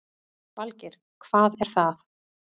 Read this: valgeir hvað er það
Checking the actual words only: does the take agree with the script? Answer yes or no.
yes